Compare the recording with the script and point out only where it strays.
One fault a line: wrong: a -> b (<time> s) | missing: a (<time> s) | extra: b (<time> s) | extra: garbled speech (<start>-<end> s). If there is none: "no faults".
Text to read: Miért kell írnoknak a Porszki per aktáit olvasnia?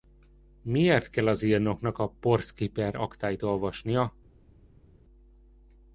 extra: az (1.3 s)